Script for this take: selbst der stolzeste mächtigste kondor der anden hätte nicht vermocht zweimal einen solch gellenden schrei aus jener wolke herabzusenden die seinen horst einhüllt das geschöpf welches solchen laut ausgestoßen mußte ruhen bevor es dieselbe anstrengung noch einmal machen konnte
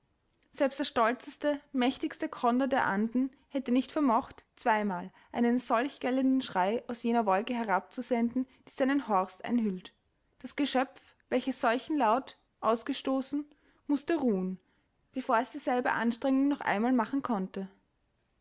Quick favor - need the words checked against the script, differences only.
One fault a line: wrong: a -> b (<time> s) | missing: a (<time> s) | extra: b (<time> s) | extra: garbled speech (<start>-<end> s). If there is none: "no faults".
no faults